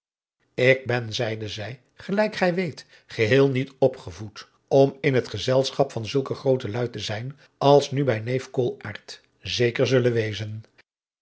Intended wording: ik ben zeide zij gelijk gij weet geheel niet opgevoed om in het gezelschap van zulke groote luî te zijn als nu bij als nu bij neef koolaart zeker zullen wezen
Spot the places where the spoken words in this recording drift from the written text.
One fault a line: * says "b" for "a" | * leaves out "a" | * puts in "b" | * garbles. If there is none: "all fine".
* leaves out "als nu bij"